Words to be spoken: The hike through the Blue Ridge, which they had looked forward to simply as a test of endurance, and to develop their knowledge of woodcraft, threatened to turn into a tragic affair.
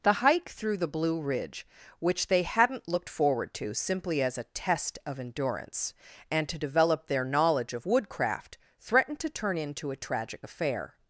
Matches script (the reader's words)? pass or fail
fail